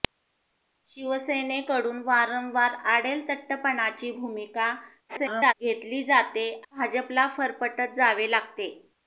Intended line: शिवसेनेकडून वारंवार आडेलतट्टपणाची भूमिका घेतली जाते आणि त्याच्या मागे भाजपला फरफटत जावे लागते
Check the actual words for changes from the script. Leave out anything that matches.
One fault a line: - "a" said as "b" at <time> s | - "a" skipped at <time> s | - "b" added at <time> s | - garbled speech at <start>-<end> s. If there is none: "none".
- garbled speech at 5.1-5.5 s
- "आणि त्याच्या मागे" skipped at 6.5 s